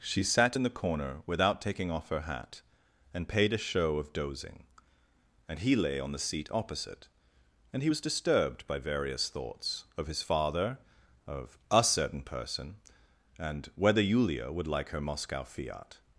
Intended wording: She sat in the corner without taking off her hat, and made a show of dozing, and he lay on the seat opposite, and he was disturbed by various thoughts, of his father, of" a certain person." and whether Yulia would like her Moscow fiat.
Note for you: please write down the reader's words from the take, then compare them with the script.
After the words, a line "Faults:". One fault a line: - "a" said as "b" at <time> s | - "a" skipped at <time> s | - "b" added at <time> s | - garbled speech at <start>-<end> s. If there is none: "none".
She sat in the corner without taking off her hat, and paid a show of dozing, and he lay on the seat opposite, and he was disturbed by various thoughts, of his father, of" a certain person." and whether Yulia would like her Moscow fiat.
Faults:
- "made" said as "paid" at 3.3 s